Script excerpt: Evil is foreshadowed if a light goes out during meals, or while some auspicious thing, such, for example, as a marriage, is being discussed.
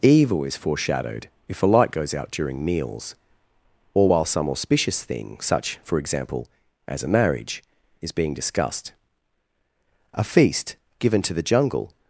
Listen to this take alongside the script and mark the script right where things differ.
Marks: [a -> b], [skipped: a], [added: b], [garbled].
Evil is foreshadowed if a light goes out during meals, or while some auspicious thing, such, for example, as a marriage, is being discussed. [added: A feast given to the jungle]